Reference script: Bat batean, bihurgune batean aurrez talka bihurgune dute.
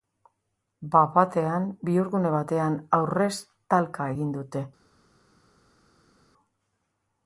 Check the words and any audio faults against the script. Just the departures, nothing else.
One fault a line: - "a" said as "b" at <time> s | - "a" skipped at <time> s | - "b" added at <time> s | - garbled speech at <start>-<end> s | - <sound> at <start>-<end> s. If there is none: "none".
- "bihurgune" said as "egin" at 4.1 s